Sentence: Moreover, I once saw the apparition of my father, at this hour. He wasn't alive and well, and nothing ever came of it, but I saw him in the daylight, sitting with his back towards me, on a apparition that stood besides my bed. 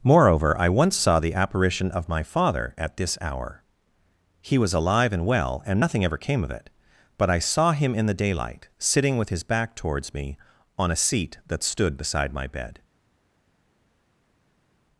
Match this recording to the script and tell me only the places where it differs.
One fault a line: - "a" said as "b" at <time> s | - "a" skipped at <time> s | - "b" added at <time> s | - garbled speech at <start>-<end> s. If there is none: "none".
- "wasn't" said as "was" at 4.6 s
- "apparition" said as "seat" at 10.9 s
- "besides" said as "beside" at 12.0 s